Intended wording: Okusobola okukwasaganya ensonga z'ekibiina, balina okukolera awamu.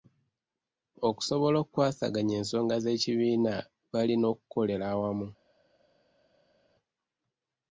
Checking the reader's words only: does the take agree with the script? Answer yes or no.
yes